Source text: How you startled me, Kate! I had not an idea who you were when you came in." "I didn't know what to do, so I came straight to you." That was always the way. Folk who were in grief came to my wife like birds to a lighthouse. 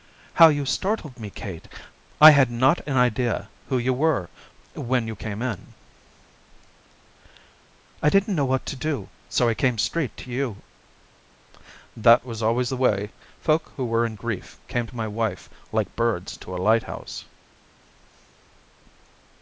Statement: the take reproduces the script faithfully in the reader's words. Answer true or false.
true